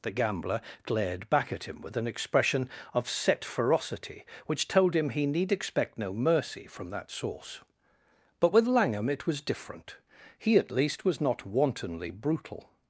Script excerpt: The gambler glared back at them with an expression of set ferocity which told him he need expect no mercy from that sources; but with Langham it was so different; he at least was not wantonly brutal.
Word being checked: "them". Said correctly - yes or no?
no